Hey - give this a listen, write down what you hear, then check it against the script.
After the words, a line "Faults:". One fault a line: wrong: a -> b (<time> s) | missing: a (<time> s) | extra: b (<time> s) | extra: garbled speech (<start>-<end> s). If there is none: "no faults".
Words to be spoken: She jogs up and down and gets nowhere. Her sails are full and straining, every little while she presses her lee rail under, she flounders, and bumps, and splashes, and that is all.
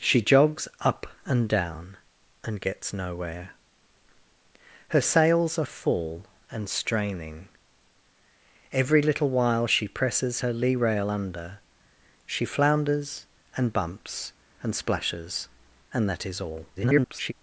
She jogs up and down and gets nowhere. Her sails are full and straining, every little while she presses her lee rail under, she flounders, and bumps, and splashes, and that is all. [garbled]
Faults:
extra: garbled speech (16.8-17.3 s)